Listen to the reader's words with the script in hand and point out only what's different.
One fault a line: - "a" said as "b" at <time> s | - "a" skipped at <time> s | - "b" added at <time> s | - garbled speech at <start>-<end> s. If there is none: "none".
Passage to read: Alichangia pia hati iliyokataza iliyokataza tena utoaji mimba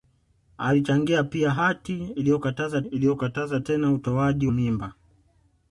none